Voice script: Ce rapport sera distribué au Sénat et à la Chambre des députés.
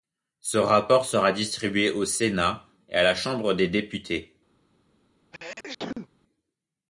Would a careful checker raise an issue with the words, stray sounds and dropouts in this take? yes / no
yes